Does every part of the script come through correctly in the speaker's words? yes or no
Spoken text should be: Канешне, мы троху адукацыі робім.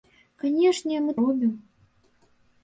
no